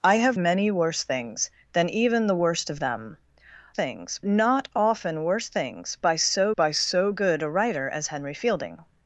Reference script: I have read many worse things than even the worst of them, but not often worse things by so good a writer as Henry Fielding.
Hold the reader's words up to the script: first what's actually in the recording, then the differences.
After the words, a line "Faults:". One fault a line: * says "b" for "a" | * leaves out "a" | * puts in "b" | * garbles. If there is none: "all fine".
I have many worse things than even the worst of them, things not often worse things by so by so good a writer as Henry Fielding.
Faults:
* leaves out "read"
* says "things" for "but"
* puts in "by so"